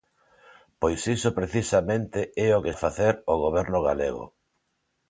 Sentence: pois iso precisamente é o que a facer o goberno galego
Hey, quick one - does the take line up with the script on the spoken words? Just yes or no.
yes